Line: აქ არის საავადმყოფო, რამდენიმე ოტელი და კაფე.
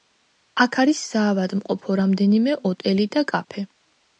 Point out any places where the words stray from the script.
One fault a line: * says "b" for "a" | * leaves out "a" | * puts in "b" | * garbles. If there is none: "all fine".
all fine